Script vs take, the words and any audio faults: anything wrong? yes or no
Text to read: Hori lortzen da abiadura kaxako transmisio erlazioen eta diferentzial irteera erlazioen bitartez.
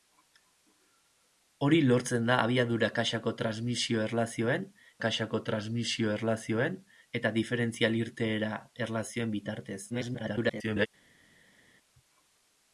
yes